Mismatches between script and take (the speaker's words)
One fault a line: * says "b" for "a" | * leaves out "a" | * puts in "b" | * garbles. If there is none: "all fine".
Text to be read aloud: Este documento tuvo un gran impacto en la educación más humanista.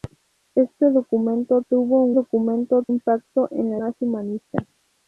* says "documento" for "gran"
* leaves out "educación"